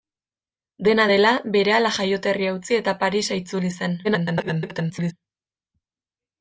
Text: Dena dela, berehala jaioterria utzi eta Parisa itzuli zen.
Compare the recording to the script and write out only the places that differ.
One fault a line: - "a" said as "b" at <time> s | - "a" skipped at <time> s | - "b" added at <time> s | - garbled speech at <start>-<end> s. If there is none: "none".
- garbled speech at 4.0-5.1 s